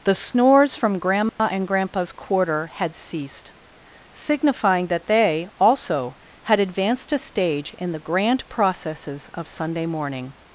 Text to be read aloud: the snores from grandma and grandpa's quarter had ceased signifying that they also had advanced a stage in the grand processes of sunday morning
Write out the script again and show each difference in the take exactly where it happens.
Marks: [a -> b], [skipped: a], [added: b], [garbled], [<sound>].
the snores from grandma [dropout] and grandpa's quarter had ceased signifying that they also had advanced a stage in the grand processes of sunday morning